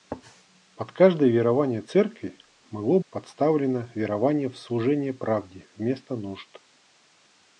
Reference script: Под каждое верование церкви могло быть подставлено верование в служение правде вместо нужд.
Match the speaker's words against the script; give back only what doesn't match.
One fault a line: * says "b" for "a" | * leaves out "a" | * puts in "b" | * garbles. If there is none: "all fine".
* leaves out "быть"